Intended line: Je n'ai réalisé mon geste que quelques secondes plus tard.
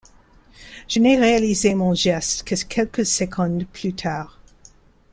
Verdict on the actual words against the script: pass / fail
pass